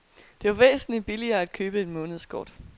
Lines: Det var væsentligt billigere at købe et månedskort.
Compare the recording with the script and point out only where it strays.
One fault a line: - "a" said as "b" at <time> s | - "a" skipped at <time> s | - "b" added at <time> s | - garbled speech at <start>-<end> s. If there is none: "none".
none